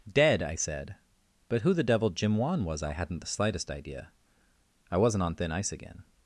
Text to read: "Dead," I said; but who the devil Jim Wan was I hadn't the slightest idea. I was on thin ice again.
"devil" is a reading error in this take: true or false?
false